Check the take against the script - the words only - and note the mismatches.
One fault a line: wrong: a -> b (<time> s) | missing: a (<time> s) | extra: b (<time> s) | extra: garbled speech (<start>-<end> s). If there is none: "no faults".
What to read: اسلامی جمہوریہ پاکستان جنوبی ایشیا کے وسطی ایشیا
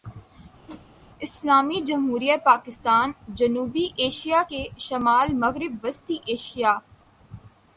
extra: شمال مغرب (4.8 s)